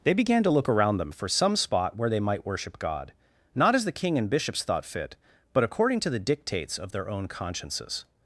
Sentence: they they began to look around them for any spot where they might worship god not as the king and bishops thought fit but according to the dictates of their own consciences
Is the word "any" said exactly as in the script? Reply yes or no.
no